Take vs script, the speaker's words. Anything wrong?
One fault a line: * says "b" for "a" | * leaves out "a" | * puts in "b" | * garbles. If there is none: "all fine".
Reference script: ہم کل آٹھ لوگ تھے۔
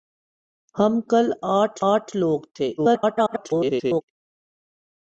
* puts in "آٹھ"
* garbles